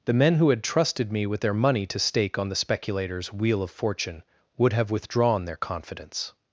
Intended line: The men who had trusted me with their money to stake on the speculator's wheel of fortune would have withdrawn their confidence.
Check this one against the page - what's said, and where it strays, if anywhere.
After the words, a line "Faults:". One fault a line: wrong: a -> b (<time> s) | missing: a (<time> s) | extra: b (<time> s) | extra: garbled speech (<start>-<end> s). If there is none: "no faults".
The men who had trusted me with their money to stake on the speculator's wheel of fortune would have withdrawn their confidence.
Faults:
no faults